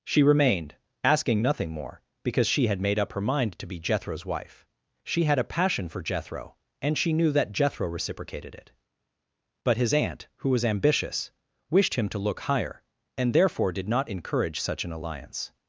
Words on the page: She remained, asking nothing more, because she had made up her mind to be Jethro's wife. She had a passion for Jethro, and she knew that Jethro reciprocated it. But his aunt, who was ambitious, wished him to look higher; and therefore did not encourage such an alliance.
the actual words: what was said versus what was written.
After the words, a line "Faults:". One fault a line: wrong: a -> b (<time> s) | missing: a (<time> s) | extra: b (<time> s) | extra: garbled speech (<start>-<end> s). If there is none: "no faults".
She remained, asking nothing more, because she had made up her mind to be Jethro's wife. She had a passion for Jethro, and she knew that Jethro reciprocated it. But his aunt, who was ambitious, wished him to look higher; and therefore did not encourage such an alliance.
Faults:
no faults